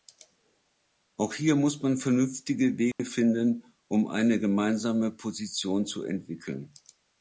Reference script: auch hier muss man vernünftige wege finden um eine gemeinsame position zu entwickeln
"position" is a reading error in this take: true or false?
false